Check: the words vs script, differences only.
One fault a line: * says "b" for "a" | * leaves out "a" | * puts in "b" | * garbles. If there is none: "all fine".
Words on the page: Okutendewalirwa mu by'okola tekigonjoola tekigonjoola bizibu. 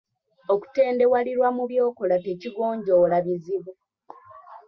* leaves out "tekigonjoola"